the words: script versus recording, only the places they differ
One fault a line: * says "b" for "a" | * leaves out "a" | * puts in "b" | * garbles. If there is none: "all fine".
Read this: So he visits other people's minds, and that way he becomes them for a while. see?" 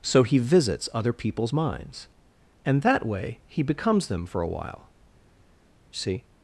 all fine